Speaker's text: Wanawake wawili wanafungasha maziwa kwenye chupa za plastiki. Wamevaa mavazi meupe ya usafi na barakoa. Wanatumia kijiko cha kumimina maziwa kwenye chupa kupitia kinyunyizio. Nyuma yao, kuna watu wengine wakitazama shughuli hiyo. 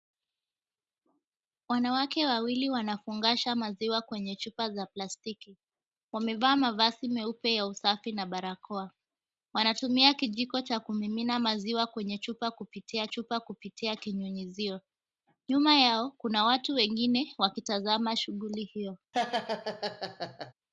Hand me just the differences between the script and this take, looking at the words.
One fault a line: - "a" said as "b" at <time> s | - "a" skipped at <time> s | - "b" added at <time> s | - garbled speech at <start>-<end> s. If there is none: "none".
- "chupa kupitia" added at 13.1 s